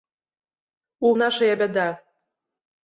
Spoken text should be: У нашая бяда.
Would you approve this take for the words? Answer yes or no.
yes